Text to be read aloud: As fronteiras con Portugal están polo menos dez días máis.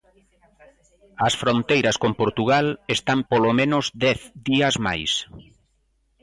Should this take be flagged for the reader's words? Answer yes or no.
no